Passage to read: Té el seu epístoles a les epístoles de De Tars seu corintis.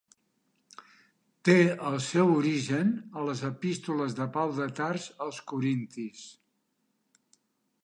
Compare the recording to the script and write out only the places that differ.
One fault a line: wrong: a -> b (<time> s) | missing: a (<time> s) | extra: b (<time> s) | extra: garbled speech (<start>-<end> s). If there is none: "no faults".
wrong: epístoles -> origen (2.4 s)
extra: Pau (4.4 s)
wrong: seu -> als (5.3 s)